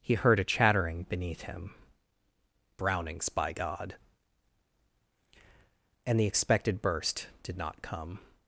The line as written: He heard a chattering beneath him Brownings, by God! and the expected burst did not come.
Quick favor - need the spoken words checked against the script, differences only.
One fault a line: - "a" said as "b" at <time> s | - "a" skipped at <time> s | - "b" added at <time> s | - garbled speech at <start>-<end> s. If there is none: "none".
none